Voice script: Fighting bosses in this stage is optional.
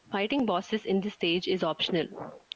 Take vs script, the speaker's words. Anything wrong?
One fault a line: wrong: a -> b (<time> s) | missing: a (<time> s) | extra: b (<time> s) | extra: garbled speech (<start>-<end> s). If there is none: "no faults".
no faults